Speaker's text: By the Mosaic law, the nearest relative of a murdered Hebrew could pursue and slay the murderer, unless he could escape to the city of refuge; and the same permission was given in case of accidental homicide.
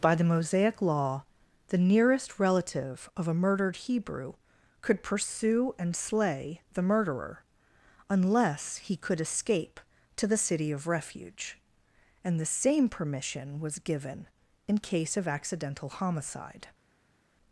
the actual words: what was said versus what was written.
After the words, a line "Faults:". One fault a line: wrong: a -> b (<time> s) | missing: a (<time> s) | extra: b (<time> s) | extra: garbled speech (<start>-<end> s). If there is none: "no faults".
By the Mosaic law, the nearest relative of a murdered Hebrew could pursue and slay the murderer, unless he could escape to the city of refuge; and the same permission was given in case of accidental homicide.
Faults:
no faults